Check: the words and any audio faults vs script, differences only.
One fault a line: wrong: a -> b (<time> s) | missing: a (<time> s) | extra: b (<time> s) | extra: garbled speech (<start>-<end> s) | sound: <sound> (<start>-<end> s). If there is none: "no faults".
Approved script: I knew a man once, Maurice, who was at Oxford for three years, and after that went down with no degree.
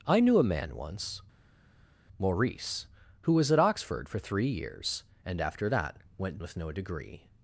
missing: down (6.4 s)